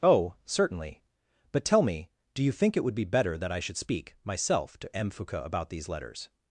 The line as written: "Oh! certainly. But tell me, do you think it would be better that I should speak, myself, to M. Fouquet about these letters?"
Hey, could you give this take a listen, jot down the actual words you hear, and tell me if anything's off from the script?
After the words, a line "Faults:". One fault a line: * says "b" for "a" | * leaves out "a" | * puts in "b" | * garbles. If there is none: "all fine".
"Oh! certainly. But tell me, do you think it would be better that I should speak, myself, to M. Fouquet about these letters?"
Faults:
all fine